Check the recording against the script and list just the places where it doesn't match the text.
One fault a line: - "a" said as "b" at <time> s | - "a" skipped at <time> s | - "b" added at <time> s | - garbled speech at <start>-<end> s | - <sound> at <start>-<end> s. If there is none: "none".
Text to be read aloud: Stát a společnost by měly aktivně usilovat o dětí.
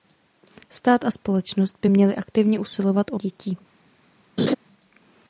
- laugh at 4.4-4.5 s